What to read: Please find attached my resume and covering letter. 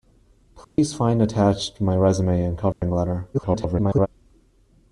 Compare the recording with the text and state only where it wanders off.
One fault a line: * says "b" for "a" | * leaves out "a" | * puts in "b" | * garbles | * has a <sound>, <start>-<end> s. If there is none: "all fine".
* has a dropout, 0.6-0.8 s
* has a dropout, 2.7-2.8 s
* garbles